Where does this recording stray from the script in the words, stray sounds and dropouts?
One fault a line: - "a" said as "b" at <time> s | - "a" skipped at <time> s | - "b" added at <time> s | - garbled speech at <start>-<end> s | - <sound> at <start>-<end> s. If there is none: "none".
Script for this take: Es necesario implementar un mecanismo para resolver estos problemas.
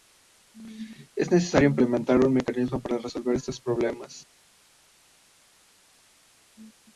none